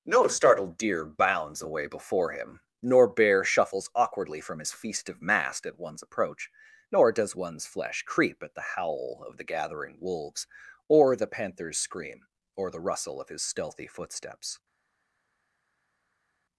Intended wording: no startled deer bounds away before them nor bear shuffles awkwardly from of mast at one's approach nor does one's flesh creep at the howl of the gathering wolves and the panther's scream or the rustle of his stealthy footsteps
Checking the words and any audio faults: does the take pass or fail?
fail